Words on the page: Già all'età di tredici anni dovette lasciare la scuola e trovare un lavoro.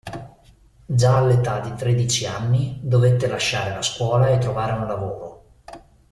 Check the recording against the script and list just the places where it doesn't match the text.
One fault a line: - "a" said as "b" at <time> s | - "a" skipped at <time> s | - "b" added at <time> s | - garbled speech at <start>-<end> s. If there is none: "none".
none